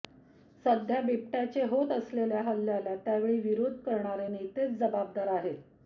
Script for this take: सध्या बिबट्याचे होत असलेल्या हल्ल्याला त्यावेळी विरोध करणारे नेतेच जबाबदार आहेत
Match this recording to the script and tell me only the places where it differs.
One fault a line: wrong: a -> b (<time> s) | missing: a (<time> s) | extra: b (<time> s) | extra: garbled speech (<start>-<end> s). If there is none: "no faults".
no faults